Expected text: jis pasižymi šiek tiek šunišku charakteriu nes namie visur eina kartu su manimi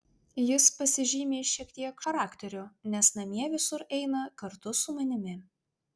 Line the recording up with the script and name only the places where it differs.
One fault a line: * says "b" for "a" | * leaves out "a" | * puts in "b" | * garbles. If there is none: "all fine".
* leaves out "šunišku"